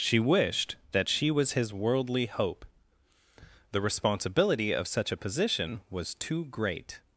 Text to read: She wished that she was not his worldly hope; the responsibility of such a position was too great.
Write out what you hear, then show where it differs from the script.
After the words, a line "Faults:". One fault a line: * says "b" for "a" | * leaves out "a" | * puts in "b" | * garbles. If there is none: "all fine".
She wished that she was his worldly hope; the responsibility of such a position was too great.
Faults:
* leaves out "not"